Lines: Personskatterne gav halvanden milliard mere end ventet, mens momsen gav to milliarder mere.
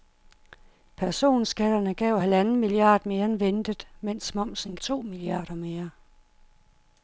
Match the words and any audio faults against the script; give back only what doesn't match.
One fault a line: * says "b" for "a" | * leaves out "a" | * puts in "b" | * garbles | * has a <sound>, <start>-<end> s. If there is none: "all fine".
* leaves out "gav"